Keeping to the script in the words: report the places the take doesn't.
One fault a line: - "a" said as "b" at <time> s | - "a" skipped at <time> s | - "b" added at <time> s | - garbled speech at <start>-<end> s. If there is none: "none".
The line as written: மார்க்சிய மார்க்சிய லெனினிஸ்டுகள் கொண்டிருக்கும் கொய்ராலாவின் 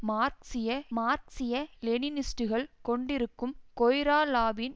none